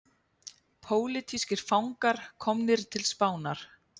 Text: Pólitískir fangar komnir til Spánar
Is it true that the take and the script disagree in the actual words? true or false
false